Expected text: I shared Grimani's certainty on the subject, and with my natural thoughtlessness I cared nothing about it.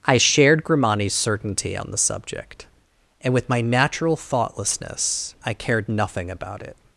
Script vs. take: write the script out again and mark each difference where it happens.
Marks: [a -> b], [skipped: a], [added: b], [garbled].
I shared Grimani's certainty on the subject, and with my natural thoughtlessness I cared nothing about it.